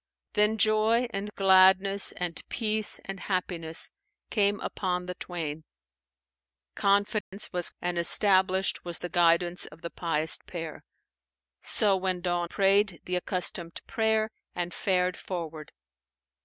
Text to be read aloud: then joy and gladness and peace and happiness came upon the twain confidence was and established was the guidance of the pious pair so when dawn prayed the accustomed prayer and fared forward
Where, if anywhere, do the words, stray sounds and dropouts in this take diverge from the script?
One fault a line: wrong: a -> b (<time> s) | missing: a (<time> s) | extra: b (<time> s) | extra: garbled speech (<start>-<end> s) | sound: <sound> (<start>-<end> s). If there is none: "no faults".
sound: dropout (7.2-7.3 s)